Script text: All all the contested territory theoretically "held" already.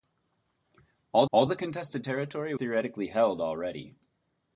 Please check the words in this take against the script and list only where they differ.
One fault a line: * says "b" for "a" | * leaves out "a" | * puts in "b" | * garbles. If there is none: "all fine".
all fine